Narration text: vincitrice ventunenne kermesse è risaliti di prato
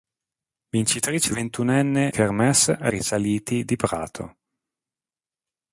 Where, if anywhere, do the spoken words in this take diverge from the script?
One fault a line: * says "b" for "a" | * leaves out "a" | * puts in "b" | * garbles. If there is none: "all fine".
all fine